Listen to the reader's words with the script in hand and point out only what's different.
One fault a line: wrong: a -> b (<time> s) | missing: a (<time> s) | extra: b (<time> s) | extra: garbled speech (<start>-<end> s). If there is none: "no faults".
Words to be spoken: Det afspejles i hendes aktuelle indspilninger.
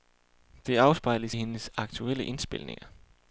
no faults